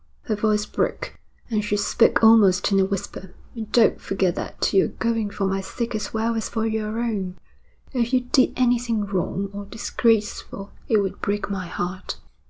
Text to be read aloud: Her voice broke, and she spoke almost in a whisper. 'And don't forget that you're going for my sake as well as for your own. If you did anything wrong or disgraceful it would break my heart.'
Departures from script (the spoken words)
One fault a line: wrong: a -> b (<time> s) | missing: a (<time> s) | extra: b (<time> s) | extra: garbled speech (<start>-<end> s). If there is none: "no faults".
no faults